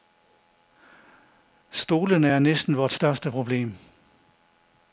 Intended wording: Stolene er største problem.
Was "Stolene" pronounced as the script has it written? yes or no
yes